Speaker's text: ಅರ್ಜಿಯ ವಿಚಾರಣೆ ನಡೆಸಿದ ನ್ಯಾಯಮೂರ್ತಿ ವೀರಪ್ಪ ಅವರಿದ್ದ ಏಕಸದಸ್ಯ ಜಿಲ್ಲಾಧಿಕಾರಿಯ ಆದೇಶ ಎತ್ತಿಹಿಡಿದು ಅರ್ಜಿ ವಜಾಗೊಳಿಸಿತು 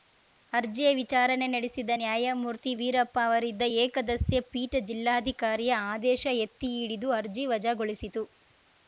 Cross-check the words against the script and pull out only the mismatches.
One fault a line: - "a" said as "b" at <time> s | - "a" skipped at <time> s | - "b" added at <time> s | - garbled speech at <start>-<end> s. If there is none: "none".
- "ಪೀಠ" added at 4.5 s